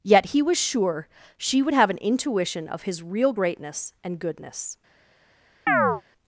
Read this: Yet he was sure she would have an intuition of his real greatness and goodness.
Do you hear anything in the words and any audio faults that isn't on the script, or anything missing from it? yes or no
yes